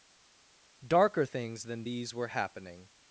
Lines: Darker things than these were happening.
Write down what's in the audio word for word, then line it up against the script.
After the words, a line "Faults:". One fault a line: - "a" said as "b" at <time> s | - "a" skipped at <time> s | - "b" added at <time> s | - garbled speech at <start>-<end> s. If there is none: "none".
Darker things than these were happening.
Faults:
none